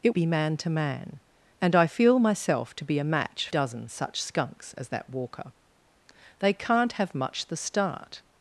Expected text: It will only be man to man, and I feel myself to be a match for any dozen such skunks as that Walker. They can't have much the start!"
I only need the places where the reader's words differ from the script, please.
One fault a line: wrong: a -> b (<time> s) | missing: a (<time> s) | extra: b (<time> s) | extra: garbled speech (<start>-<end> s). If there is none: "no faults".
missing: will only (0.1 s)
missing: for any (3.5 s)